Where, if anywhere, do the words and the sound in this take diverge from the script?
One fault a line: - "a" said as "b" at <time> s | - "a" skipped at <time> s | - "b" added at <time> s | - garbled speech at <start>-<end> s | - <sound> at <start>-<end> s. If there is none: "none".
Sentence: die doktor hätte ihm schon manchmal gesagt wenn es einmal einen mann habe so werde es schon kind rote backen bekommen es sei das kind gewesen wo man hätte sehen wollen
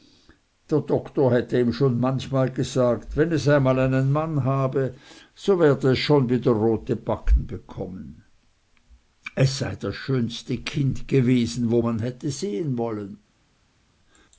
- "die" said as "der" at 0.7 s
- "kind" said as "wieder" at 6.3 s
- "schönste" added at 9.9 s